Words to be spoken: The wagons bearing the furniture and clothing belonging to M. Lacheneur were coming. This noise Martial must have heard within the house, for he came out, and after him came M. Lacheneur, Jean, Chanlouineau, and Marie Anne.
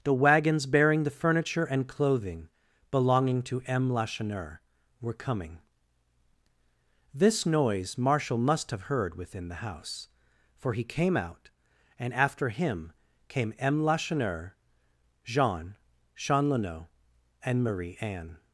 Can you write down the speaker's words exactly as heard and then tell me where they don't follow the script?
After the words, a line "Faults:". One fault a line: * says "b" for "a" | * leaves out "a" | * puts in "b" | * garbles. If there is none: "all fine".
The wagons bearing the furniture and clothing belonging to M. Lacheneur were coming. This noise Martial must have heard within the house, for he came out, and after him came M. Lacheneur, Jean, Chanlouineau, and Marie Anne.
Faults:
all fine